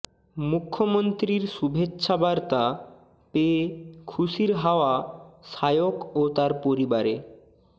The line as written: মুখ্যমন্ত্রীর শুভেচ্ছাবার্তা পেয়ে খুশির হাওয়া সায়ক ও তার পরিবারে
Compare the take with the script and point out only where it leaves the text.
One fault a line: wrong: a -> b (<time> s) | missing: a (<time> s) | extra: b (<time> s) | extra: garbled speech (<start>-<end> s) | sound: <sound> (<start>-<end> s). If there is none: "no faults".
no faults